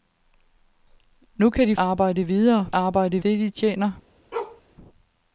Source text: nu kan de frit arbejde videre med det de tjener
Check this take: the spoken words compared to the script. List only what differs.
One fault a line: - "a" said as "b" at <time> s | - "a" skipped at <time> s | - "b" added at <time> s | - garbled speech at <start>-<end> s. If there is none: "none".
- "frit" skipped at 1.8 s
- "med" said as "arbejde" at 2.7 s